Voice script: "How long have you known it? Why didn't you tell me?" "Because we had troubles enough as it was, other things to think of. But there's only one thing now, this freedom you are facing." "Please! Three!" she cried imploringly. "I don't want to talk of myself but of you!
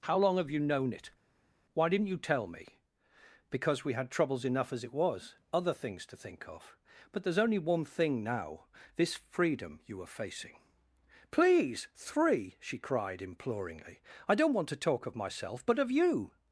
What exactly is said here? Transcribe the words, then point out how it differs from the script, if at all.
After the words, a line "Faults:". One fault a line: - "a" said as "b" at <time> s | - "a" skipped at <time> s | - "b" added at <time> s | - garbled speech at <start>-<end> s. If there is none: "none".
"How long have you known it? Why didn't you tell me?" "Because we had troubles enough as it was, other things to think of. But there's only one thing now, this freedom you are facing." "Please! Three!" she cried imploringly. "I don't want to talk of myself but of you!
Faults:
none